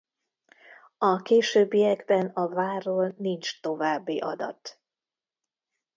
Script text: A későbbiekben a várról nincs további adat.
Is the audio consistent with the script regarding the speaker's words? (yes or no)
yes